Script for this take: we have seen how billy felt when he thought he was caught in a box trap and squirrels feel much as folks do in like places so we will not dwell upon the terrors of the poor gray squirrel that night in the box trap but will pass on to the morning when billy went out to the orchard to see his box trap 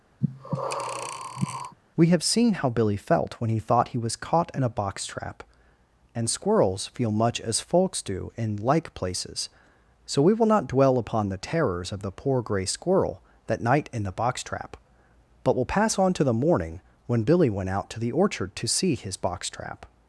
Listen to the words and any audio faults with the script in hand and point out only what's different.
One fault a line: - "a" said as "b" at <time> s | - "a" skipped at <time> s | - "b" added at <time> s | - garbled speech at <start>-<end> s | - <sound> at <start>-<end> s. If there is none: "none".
- breath at 0.2-1.8 s